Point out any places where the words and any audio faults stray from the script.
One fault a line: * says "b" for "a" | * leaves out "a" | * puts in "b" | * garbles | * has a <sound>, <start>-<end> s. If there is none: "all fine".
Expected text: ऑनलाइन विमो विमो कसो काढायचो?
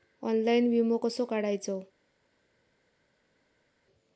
* leaves out "विमो"